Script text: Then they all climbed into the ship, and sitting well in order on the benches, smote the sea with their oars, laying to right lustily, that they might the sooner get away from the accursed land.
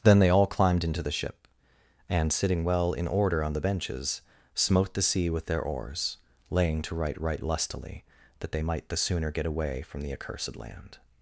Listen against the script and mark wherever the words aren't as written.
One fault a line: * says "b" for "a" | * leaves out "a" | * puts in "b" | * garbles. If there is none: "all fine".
* puts in "right"